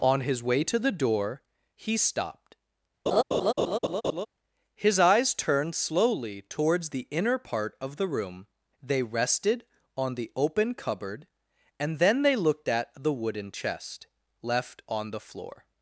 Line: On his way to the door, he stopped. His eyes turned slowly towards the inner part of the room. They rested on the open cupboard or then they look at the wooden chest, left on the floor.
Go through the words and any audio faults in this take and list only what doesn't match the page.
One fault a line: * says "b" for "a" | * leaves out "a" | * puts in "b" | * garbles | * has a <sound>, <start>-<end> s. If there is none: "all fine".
* has a laugh, 3.1-4.3 s
* says "and" for "or"
* says "looked" for "look"